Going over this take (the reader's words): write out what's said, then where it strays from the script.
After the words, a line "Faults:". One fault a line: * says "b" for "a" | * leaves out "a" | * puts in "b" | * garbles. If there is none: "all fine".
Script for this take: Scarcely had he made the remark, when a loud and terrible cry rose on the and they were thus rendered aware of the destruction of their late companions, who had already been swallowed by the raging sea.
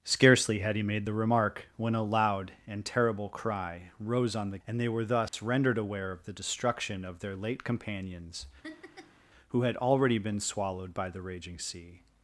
Scarcely had he made the remark, when a loud and terrible cry rose on the and they were thus rendered aware of the destruction of their late companions, who had already been swallowed by the raging sea.
Faults:
all fine